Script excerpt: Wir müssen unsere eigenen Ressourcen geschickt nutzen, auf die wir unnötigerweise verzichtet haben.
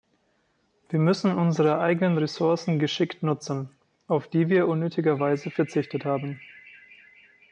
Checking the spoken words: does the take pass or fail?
pass